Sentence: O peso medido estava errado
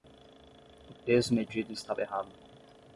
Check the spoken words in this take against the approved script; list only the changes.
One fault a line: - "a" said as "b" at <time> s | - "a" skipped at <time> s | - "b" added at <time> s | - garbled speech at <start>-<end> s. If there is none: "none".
none